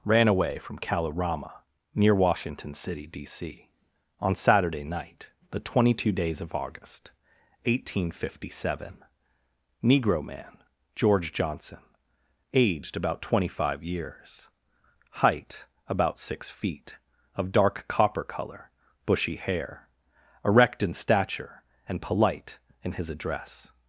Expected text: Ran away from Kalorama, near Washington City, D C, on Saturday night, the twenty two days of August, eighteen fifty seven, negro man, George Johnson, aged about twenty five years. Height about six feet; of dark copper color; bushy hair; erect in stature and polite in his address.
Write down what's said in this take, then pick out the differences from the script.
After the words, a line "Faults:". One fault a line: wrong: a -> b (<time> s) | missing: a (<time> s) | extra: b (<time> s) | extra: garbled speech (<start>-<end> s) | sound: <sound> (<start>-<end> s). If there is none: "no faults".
Ran away from Kalorama, near Washington City, D C, on Saturday night, the twenty two days of August, eighteen fifty seven, negro man, George Johnson, aged about twenty five years. Height about six feet; of dark copper color; bushy hair; erect in stature and polite in his address.
Faults:
no faults